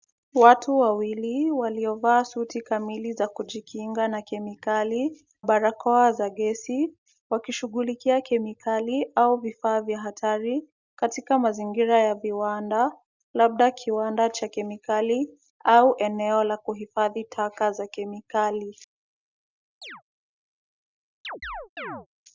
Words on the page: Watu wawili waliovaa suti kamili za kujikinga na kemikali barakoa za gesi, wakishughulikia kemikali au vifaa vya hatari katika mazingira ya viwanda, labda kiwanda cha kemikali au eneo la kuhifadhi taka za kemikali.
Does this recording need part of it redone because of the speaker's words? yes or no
no